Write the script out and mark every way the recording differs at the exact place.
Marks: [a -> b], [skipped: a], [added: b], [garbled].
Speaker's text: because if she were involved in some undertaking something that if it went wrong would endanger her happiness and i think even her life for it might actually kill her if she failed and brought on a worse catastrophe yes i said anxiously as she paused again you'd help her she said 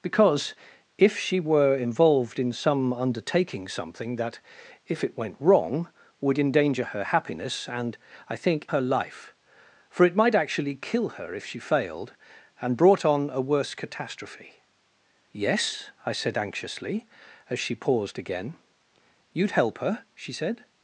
because if she were involved in some undertaking something that if it went wrong would endanger her happiness and i think [skipped: even] her life for it might actually kill her if she failed and brought on a worse catastrophe yes i said anxiously as she paused again you'd help her she said